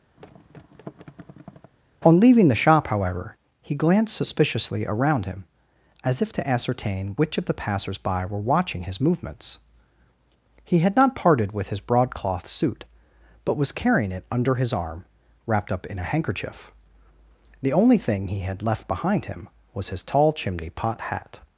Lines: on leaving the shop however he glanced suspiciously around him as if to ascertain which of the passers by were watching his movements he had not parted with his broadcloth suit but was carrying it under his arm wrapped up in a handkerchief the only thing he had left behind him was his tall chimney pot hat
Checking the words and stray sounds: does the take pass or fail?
fail